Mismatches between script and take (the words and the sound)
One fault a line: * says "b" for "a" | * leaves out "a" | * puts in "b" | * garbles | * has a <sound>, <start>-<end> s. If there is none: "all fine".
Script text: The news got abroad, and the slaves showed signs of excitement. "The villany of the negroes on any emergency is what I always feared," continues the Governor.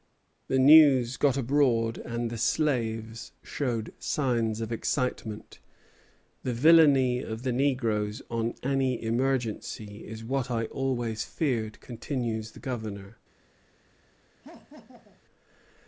* has a laugh, 14.4-15.2 s